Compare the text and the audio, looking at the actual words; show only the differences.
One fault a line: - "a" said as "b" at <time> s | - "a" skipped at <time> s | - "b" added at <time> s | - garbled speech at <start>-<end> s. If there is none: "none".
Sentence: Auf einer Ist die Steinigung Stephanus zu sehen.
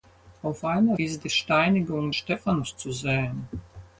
none